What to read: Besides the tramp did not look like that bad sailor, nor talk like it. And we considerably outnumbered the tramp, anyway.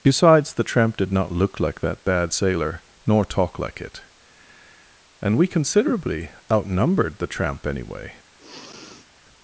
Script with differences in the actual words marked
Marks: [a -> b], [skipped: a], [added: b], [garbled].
Besides the tramp did not look like that bad sailor, nor talk like it. And we considerably outnumbered the tramp, anyway.